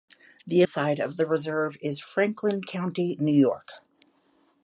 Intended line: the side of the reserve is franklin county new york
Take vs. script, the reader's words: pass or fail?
pass